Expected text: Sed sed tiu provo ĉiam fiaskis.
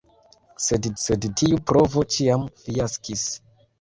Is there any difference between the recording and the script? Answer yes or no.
no